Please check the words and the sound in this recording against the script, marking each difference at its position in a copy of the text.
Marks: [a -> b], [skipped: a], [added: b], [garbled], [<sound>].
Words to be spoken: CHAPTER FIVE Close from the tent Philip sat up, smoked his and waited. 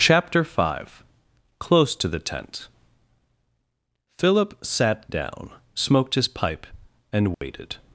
CHAPTER FIVE Close [from -> to] the tent Philip sat [up, -> down] smoked his [added: pipe] and waited. [dropout]